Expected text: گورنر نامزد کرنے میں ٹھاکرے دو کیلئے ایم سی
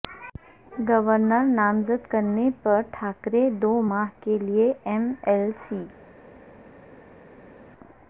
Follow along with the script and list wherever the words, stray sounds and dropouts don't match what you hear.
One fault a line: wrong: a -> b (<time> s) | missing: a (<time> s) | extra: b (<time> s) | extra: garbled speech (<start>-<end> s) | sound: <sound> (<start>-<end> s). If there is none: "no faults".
wrong: میں -> پر (2.6 s)
extra: ماہ (3.9 s)
extra: ایل (5.2 s)